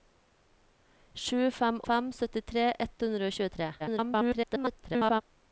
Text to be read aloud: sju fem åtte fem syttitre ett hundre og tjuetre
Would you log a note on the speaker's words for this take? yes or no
yes